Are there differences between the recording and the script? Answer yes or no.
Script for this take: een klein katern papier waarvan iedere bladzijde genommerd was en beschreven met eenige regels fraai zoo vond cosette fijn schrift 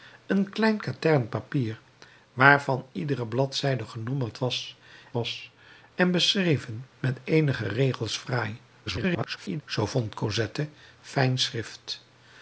yes